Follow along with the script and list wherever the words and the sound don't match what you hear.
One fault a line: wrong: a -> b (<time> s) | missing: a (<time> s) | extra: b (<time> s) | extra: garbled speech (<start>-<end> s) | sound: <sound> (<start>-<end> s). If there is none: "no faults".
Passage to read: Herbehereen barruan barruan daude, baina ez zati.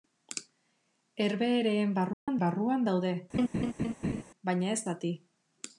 sound: dropout (2.1-2.3 s)
sound: laugh (3.3-4.2 s)